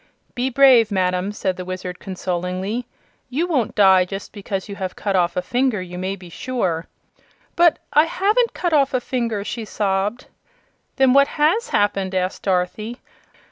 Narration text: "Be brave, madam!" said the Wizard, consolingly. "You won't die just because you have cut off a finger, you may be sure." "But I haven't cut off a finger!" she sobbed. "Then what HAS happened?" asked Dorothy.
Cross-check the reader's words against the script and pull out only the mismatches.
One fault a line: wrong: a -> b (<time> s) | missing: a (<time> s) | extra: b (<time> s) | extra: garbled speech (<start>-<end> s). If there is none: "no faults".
no faults